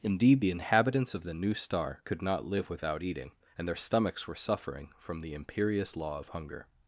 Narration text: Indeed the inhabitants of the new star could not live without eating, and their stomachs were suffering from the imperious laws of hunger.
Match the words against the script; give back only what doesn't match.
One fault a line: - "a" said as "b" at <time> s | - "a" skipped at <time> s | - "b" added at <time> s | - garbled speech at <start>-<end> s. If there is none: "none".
- "laws" said as "law" at 6.0 s